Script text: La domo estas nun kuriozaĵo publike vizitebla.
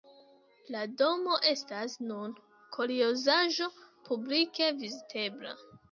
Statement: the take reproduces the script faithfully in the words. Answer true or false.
true